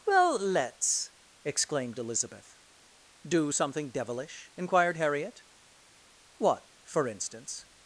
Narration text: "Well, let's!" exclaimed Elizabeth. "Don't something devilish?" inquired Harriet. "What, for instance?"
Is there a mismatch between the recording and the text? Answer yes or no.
yes